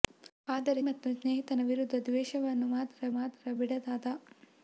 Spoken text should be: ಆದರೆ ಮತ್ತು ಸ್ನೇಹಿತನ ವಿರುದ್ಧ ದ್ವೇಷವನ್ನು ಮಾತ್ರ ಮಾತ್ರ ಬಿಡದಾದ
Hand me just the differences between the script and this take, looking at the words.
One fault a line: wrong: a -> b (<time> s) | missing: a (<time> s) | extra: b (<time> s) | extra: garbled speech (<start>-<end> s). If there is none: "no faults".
no faults